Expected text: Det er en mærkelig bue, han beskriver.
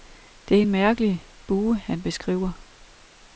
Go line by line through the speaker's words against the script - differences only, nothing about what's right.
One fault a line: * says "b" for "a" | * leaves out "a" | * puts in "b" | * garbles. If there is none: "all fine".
all fine